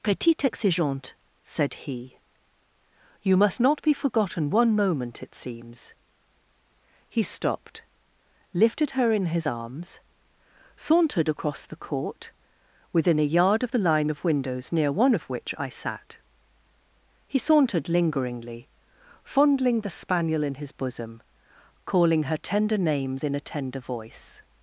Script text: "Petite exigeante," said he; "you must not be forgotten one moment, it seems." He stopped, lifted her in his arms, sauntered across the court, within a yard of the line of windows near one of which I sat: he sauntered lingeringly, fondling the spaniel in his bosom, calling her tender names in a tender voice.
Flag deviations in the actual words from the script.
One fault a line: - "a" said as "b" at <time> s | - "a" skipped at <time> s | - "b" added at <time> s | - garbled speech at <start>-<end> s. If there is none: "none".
none